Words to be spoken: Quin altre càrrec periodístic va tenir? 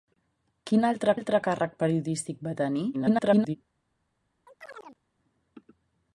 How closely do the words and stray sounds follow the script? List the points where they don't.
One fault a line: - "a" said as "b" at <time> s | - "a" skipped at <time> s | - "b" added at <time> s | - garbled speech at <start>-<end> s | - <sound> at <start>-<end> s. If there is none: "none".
- "altre" added at 1.1 s
- garbled speech at 2.9-3.6 s
- chirp at 4.5-5.0 s